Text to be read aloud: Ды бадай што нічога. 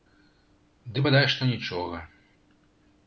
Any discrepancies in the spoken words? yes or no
no